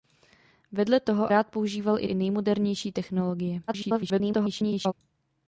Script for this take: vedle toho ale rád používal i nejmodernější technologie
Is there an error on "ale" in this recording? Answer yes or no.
yes